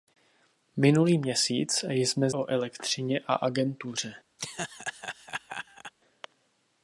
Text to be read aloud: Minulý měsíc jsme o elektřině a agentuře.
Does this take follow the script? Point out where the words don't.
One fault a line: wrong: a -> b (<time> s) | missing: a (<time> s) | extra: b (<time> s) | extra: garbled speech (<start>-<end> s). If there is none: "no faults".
no faults